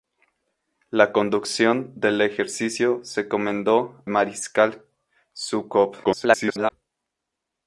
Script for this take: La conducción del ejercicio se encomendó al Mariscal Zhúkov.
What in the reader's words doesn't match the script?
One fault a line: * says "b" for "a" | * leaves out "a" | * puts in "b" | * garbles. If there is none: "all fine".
* leaves out "al"
* garbles